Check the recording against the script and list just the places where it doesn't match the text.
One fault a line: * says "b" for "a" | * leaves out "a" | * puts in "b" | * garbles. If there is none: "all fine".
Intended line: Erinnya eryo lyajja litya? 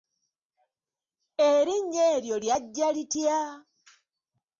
all fine